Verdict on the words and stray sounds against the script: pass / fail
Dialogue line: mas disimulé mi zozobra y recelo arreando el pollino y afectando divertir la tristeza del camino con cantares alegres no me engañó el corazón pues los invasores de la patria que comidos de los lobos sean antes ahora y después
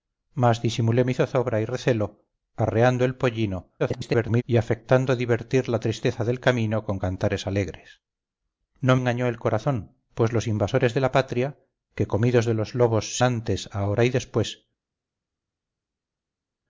fail